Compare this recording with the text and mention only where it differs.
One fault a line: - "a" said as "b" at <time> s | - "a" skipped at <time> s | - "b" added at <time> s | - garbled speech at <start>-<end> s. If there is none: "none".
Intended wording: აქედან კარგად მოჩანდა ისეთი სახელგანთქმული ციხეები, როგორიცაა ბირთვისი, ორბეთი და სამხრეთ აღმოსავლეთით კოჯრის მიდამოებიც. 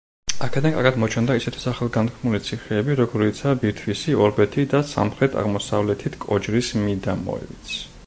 none